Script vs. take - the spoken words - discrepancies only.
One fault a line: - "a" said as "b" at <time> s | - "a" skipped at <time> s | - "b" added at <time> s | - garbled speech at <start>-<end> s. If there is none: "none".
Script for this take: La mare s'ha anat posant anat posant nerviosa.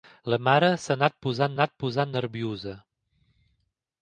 none